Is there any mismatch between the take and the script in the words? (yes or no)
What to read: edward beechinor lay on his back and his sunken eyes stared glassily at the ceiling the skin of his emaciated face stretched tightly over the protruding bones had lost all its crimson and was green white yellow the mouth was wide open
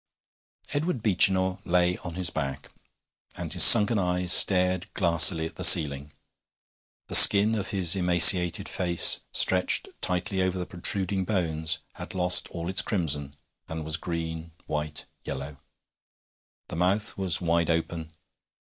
no